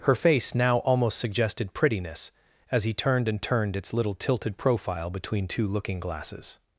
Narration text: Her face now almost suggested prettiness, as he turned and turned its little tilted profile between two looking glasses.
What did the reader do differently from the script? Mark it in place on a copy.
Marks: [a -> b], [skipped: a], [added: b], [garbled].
Her face now almost suggested prettiness, as he turned and turned its little tilted profile between two looking glasses.